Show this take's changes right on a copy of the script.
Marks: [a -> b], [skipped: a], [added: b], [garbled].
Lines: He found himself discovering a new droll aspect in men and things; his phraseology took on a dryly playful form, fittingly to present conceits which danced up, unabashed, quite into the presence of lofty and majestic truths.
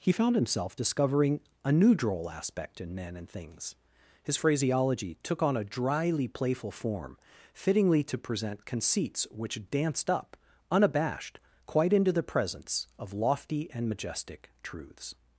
He found himself discovering a new droll aspect in men and things; his phraseology took on a dryly playful form, fittingly to present conceits which danced up, unabashed, quite into the presence of lofty and majestic truths.